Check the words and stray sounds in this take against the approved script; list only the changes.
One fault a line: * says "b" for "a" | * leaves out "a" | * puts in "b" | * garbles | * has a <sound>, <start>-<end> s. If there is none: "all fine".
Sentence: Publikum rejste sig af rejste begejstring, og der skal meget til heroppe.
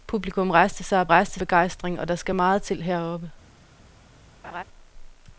* has a laugh, 4.4-4.6 s